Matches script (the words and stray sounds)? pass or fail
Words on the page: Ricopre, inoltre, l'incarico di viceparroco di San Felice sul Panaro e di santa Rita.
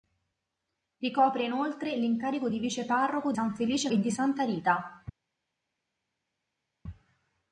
fail